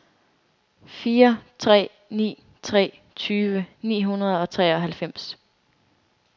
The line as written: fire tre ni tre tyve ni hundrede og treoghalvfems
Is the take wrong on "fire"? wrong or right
right